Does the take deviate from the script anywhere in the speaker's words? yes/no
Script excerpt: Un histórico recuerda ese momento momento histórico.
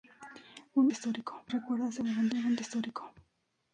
no